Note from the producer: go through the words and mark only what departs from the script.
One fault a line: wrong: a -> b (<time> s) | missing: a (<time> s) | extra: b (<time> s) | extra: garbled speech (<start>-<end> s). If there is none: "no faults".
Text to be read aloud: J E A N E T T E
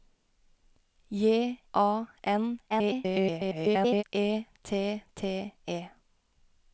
missing: E (1.6 s)
extra: garbled speech (2.7-4.0 s)